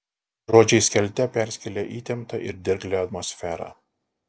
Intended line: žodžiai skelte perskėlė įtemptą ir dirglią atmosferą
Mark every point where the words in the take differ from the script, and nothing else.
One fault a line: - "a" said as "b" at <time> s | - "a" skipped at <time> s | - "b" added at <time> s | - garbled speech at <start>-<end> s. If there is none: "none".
none